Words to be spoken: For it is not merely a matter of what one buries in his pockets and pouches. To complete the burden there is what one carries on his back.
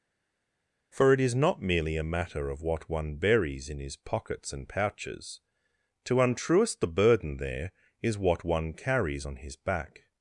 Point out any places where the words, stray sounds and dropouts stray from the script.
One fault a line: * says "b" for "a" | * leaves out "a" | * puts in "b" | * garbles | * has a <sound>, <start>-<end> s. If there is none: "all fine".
* says "untruest" for "complete"